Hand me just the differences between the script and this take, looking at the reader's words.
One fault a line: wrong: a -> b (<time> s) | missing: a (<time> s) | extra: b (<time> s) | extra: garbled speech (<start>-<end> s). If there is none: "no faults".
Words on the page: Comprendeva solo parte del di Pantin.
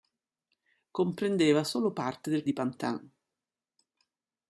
no faults